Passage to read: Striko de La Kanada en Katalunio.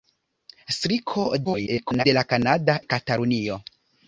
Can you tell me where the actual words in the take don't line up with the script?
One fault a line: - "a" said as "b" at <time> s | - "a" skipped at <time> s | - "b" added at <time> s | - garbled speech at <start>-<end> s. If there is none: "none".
- garbled speech at 1.4-2.0 s
- "en" skipped at 2.8 s